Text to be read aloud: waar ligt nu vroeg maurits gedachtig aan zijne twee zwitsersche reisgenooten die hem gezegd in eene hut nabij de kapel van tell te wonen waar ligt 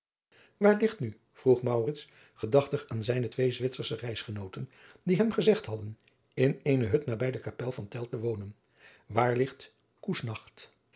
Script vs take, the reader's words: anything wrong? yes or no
yes